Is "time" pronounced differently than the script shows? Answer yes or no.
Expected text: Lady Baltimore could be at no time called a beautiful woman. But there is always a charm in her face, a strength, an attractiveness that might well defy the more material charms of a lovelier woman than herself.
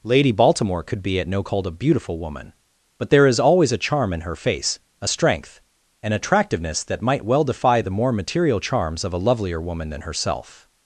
yes